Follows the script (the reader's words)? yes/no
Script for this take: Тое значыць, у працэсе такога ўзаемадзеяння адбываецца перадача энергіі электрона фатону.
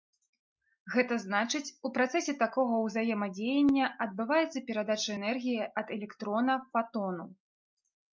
no